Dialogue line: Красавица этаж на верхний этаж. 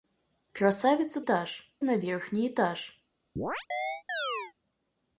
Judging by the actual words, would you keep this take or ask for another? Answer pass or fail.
pass